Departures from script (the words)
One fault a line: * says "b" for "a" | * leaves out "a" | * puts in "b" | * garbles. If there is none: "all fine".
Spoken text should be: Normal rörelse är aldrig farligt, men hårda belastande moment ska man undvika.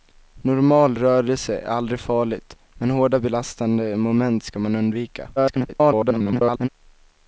* garbles